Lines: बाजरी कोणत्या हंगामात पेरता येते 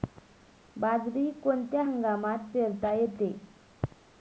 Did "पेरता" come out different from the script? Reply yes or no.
no